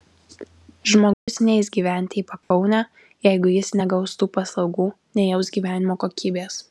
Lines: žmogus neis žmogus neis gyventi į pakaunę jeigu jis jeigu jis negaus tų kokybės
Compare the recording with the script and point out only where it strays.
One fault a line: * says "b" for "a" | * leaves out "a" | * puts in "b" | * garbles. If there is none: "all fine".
* leaves out "žmogus neis"
* says "negaus tų paslaugų nejaus gyvenimo" for "jeigu jis negaus tų"